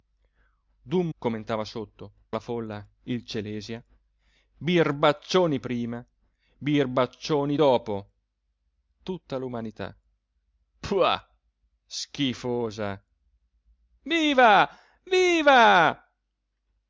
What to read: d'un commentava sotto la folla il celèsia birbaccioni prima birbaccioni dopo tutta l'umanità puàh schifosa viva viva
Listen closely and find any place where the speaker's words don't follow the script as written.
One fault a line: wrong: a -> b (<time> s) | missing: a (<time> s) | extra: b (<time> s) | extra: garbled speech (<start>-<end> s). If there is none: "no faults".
no faults